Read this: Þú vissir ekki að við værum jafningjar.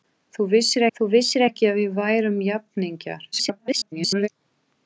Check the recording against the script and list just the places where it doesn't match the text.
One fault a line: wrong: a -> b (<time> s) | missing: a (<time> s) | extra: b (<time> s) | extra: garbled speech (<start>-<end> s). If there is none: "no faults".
extra: þú vissir (1.0 s)
extra: garbled speech (3.3-4.3 s)